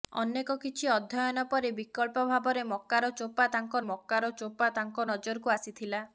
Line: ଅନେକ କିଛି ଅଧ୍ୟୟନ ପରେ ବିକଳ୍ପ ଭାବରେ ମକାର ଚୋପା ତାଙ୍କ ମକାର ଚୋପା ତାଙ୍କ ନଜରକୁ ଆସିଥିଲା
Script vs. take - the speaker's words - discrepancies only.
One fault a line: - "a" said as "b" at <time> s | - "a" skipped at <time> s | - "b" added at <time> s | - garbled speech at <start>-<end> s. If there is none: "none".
none